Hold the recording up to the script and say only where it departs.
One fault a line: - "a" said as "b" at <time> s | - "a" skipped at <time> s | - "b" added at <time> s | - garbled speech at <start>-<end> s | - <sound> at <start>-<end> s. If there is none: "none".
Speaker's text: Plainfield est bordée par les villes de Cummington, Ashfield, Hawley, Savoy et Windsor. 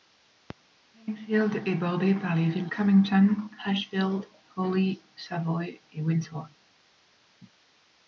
- "de" skipped at 2.7 s